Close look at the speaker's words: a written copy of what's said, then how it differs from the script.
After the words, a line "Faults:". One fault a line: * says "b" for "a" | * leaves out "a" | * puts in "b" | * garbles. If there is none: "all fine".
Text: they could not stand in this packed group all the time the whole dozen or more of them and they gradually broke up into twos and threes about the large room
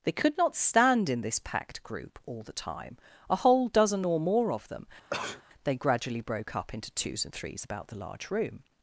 they could not stand in this packed group all the time a whole dozen or more of them they gradually broke up into twos and threes about the large room
Faults:
* says "a" for "the"
* leaves out "and"